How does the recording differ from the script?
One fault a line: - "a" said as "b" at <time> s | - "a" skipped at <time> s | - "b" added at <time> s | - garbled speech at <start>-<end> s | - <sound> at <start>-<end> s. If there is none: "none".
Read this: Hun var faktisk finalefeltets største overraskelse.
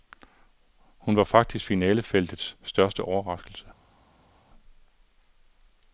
none